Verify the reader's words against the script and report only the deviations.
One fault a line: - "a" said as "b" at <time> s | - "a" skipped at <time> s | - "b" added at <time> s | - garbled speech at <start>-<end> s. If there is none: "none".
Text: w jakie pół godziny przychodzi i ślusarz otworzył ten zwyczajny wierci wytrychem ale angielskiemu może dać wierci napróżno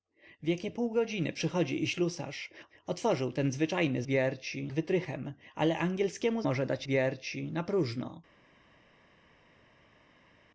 none